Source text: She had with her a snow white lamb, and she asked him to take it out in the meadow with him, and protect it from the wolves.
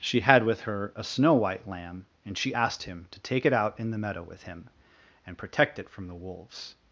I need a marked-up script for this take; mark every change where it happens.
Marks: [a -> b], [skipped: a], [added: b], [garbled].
She had with her a snow white lamb, and she asked him to take it out in the meadow with him, and protect it from the wolves.